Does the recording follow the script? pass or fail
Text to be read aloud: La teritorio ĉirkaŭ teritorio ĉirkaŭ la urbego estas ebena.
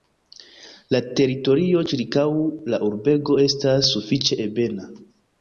fail